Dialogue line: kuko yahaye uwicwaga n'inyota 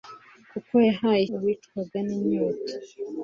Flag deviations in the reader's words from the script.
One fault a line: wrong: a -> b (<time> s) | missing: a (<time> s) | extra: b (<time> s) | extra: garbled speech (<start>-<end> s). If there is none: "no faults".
no faults